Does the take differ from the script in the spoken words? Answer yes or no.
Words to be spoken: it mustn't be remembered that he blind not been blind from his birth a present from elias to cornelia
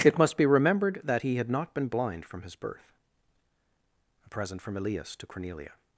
yes